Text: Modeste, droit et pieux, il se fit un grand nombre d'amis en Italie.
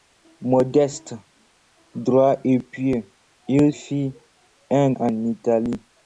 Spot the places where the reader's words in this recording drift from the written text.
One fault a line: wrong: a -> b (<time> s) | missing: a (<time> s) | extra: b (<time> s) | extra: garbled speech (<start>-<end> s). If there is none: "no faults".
missing: se (3.7 s)
missing: grand nombre d'amis (4.9 s)